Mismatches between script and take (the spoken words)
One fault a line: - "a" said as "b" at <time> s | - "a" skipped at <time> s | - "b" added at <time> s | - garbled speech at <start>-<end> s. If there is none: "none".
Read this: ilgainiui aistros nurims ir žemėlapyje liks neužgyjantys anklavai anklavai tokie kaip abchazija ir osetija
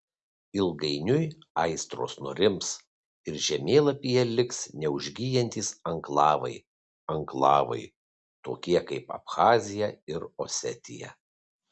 none